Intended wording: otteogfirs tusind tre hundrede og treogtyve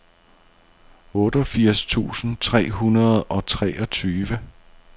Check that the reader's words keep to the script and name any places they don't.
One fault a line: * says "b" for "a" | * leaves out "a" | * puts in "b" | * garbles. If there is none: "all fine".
all fine